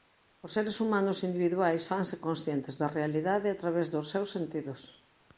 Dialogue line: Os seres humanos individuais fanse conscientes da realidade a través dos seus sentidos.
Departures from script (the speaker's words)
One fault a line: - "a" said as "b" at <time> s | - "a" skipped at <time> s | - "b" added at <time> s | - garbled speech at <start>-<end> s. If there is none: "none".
none